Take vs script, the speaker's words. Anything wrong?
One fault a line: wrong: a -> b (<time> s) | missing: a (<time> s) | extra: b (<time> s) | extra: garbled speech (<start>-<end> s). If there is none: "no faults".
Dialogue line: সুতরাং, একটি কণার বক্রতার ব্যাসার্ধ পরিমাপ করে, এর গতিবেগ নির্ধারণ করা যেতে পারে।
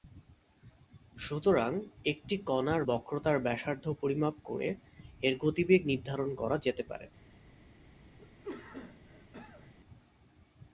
no faults